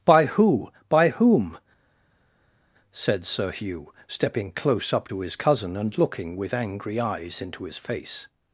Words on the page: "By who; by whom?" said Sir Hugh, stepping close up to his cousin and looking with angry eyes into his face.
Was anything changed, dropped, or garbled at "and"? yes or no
no